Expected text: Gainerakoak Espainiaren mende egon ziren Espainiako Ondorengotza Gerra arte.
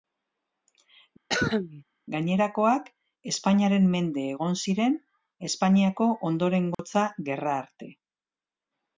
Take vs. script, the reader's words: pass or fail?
pass